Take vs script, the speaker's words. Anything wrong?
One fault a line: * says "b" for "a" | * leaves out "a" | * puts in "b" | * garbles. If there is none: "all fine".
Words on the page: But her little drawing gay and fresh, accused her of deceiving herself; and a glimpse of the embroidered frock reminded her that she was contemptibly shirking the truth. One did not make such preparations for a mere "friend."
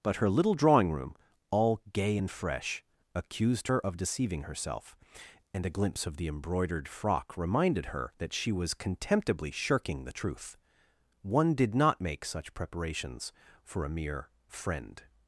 * puts in "room all"